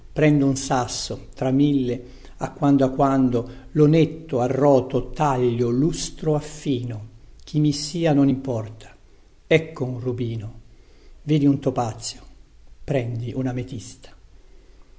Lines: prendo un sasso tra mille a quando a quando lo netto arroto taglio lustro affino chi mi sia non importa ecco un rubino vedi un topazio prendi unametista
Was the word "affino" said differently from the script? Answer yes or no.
no